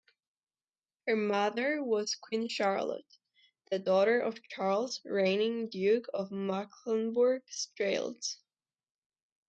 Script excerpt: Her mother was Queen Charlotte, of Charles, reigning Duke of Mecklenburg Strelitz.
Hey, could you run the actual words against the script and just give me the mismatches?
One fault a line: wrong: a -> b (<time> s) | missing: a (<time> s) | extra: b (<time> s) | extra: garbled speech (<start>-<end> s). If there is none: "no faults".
extra: the daughter (3.7 s)